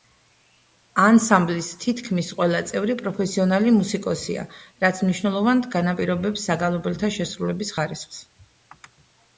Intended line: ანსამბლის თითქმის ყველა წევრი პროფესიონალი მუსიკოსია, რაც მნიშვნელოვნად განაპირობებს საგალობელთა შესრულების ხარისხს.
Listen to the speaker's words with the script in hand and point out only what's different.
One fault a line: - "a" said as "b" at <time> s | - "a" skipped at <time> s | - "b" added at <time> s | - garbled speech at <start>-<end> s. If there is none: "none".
none